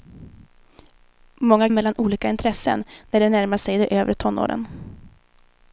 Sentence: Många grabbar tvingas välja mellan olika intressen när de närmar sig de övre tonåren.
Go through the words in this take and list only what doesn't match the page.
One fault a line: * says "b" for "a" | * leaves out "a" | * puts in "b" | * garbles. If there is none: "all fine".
* leaves out "grabbar tvingas välja"